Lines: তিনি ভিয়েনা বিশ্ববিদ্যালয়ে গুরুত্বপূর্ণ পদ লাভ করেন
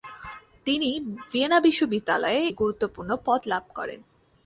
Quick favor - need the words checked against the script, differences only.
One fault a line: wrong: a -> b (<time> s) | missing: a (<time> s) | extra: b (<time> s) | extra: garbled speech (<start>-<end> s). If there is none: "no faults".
no faults